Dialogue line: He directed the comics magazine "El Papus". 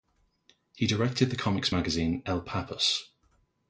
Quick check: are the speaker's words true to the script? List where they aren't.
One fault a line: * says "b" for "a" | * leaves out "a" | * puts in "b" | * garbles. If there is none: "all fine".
all fine